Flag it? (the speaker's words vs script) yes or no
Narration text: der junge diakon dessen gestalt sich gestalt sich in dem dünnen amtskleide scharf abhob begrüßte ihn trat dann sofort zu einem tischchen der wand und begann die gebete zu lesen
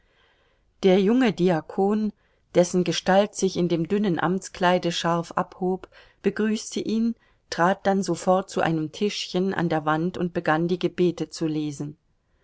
yes